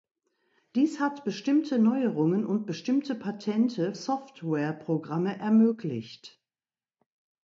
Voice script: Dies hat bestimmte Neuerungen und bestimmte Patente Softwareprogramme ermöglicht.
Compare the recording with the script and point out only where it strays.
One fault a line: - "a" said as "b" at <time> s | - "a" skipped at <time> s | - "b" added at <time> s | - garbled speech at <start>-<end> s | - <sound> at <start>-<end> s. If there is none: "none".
none